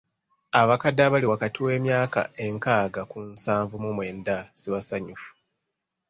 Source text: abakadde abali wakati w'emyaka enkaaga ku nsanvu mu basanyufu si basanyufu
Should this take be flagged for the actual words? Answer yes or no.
yes